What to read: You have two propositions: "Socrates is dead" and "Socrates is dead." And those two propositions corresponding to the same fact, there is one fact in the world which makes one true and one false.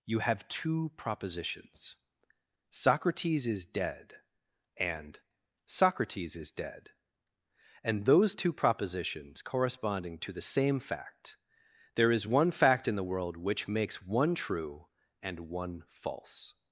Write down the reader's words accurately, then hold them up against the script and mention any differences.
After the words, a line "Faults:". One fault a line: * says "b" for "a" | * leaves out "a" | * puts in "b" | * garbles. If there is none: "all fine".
You have two propositions: "Socrates is dead" and "Socrates is dead." And those two propositions corresponding to the same fact, there is one fact in the world which makes one true and one false.
Faults:
all fine